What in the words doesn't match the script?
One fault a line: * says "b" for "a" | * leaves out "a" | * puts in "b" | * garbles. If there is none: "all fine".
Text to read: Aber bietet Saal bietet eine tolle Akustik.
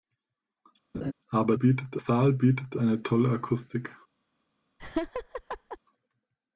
all fine